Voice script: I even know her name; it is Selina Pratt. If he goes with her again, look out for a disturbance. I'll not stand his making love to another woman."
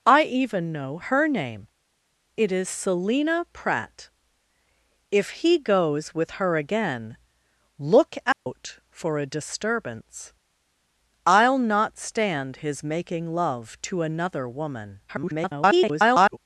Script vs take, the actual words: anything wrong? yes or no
yes